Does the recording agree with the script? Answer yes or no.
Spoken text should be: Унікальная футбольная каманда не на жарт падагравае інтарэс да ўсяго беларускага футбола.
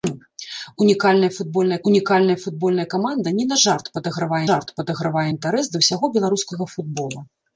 no